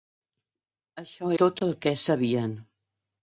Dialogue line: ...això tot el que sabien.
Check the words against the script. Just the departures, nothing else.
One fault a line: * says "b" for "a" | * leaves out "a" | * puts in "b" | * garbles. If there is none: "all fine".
all fine